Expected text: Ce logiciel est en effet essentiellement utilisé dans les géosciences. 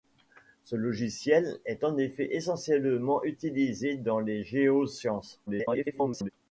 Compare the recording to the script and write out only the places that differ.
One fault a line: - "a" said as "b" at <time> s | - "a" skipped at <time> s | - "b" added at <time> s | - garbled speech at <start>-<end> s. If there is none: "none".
- garbled speech at 5.5-6.3 s